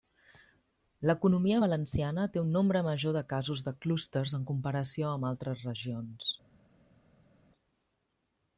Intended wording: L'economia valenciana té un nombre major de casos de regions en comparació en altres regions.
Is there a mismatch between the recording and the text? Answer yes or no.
yes